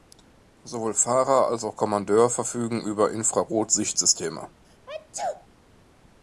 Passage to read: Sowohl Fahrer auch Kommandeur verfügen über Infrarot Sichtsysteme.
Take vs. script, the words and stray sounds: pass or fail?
fail